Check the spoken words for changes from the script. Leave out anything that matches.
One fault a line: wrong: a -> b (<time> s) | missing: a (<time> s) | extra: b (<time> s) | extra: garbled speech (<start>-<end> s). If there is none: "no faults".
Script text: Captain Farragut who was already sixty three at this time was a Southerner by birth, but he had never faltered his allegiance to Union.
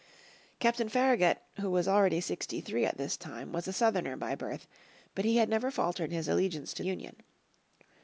no faults